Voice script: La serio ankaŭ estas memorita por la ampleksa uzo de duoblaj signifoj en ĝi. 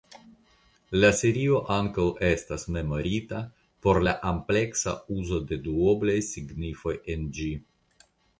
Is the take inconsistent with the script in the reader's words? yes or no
no